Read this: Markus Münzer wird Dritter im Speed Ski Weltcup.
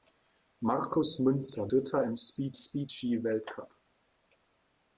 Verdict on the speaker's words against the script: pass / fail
fail